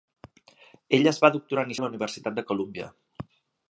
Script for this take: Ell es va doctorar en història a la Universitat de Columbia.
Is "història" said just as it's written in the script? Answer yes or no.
no